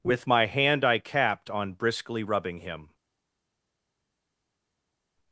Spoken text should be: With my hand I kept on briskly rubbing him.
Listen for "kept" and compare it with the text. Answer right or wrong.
wrong